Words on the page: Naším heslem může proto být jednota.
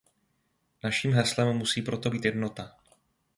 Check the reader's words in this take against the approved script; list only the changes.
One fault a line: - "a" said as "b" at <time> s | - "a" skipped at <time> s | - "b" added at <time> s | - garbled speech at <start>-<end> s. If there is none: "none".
- "může" said as "musí" at 1.6 s